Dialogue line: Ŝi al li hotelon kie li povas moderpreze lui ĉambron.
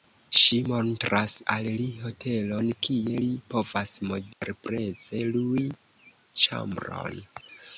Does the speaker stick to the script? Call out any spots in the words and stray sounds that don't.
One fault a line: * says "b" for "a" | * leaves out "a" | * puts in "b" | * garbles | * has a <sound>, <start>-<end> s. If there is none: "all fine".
* puts in "montras"
* has a dropout, 4.3-4.4 s